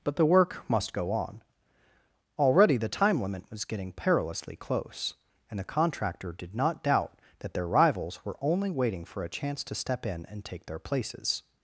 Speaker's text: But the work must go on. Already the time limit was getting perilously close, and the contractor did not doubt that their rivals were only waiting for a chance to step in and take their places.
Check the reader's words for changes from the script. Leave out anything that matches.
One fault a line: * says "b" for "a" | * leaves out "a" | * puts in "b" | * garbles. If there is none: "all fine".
all fine